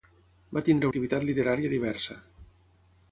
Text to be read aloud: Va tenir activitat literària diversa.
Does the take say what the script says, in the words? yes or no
yes